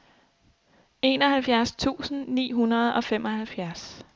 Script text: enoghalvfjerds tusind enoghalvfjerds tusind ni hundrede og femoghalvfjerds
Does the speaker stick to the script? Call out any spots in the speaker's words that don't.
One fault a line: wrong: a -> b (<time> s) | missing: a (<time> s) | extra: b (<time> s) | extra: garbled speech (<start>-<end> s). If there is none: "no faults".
missing: enoghalvfjerds tusind (2.3 s)